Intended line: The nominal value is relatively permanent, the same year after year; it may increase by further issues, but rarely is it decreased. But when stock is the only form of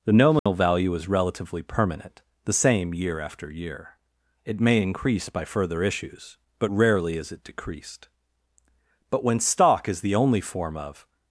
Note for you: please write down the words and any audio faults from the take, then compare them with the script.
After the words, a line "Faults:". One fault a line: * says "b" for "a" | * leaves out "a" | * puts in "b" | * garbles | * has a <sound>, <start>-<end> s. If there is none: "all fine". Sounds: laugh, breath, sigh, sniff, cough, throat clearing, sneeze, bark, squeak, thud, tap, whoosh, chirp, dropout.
The nominal value is relatively permanent, the same year after year; it may increase by further issues, but rarely is it decreased. But when stock is the only form of
Faults:
* has a dropout, 0.4-0.5 s